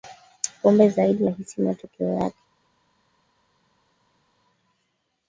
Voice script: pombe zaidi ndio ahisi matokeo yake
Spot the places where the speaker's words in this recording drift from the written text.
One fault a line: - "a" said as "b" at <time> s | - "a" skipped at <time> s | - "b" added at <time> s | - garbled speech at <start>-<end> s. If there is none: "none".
- "ndio" skipped at 1.3 s